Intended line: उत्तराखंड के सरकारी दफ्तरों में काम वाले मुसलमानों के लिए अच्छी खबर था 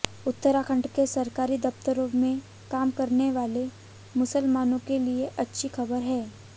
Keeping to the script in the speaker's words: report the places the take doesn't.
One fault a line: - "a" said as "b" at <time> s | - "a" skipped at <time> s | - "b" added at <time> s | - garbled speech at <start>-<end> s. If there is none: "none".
- "करने" added at 2.9 s
- "था" said as "है" at 6.0 s